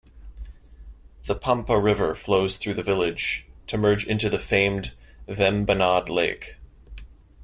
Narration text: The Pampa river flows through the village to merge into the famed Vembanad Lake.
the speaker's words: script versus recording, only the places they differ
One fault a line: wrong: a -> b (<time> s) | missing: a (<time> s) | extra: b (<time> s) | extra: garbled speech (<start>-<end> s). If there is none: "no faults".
no faults